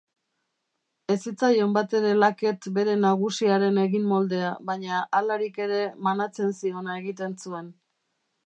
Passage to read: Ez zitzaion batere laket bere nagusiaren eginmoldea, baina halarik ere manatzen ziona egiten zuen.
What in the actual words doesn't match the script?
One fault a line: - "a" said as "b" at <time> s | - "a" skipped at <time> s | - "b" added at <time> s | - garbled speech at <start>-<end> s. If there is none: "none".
none